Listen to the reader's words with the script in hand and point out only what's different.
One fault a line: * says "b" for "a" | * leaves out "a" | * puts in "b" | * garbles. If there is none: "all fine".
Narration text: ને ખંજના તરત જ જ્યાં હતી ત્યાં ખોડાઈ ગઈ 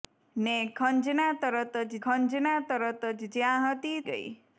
* puts in "ખંજના તરત જ"
* leaves out "ત્યાં ખોડાઈ"